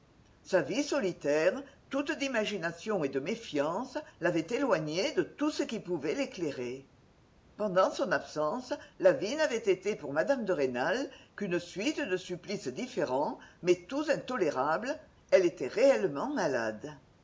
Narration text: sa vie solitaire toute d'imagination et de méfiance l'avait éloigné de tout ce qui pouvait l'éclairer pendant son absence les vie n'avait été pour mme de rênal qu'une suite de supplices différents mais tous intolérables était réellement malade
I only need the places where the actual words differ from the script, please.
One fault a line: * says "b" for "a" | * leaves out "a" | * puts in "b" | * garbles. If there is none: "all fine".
* says "la" for "les"
* puts in "elle"